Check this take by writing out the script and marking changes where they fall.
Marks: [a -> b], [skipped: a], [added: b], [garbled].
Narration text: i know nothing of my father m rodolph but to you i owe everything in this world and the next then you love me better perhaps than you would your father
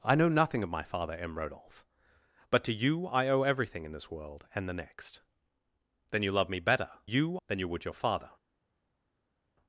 i know nothing of my father m rodolph but to you i owe everything in this world and the next then you love me better [perhaps -> you] than you would your father